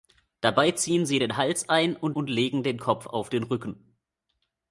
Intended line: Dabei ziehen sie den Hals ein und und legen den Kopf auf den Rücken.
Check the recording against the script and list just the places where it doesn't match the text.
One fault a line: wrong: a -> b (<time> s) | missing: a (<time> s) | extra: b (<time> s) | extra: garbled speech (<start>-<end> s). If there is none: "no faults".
no faults